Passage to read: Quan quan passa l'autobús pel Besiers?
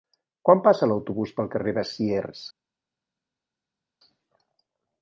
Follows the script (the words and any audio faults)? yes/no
no